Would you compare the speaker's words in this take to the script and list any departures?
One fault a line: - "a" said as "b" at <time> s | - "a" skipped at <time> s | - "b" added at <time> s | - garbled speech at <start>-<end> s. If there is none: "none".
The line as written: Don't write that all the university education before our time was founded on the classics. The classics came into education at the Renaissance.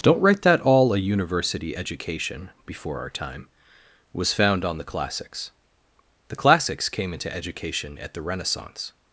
- "the" said as "a" at 0.9 s
- "founded" said as "found" at 4.3 s